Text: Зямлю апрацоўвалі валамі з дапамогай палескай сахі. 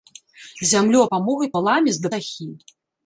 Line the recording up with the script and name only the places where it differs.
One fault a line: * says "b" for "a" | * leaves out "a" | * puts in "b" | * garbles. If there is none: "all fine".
* says "дапамогай" for "апрацоўвалі"
* leaves out "дапамогай палескай"